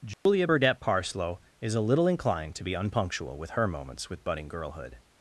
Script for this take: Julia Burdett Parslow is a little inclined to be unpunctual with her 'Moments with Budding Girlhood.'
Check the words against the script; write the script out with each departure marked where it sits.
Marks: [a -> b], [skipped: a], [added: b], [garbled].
Julia Burdett Parslow is a little inclined to be unpunctual with her 'Moments with Budding Girlhood.'